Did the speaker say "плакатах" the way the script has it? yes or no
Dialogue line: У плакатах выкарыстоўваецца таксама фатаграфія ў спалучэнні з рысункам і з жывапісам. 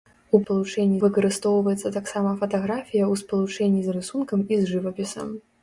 no